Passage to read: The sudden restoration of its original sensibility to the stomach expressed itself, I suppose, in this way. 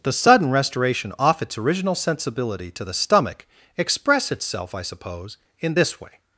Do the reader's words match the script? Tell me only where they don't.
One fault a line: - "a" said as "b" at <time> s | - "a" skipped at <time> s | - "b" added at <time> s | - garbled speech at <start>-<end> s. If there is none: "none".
- "of" said as "off" at 1.2 s
- "expressed" said as "express" at 3.8 s